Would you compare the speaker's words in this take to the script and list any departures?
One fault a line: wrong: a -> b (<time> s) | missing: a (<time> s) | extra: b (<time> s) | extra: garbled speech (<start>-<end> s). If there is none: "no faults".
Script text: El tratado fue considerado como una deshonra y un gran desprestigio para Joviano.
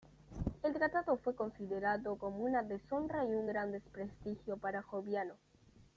no faults